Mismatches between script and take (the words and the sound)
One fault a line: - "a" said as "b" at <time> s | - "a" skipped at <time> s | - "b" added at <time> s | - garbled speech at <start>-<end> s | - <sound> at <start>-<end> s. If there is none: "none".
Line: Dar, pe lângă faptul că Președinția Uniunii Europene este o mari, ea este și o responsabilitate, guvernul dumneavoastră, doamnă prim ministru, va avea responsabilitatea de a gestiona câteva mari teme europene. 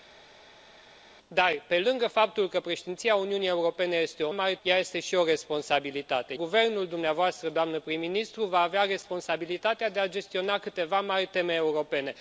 none